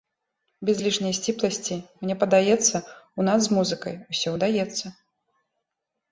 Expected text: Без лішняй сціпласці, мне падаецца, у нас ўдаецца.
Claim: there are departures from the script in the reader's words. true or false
true